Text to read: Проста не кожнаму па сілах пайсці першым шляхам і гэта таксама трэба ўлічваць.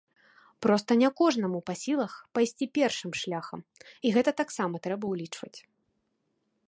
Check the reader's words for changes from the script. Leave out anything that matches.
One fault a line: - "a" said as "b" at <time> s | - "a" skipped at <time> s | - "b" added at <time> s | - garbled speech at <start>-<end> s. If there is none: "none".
none